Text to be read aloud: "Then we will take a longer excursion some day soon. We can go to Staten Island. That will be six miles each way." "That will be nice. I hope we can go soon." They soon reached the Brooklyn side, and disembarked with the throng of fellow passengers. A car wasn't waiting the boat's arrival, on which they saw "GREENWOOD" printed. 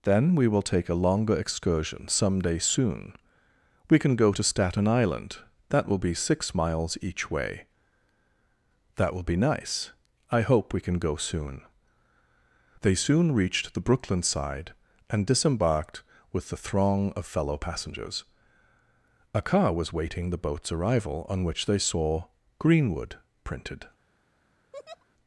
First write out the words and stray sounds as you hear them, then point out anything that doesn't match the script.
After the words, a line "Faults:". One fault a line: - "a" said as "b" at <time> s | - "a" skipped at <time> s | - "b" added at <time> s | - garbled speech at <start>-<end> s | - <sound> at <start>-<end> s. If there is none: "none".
"Then we will take a longer excursion some day soon. We can go to Staten Island. That will be six miles each way." "That will be nice. I hope we can go soon." They soon reached the Brooklyn side, and disembarked with the throng of fellow passengers. A car was waiting the boat's arrival, on which they saw "GREENWOOD" printed.
Faults:
- "wasn't" said as "was" at 19.7 s
- laugh at 24.7-25.1 s